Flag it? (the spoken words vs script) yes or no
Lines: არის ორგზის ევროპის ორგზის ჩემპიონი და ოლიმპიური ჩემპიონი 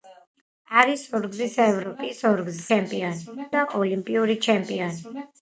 no